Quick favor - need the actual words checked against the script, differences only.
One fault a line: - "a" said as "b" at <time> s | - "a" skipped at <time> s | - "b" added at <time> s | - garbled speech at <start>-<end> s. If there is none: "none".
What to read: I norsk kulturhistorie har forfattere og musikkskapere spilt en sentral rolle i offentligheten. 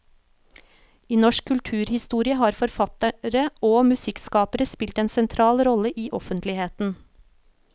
none